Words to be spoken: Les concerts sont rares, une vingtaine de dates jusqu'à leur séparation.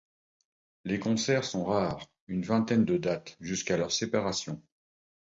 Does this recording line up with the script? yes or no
yes